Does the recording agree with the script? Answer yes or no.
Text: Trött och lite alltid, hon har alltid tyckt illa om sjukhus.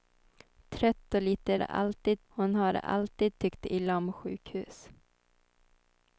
yes